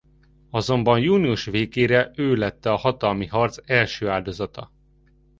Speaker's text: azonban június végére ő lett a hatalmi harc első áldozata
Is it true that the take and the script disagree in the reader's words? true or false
false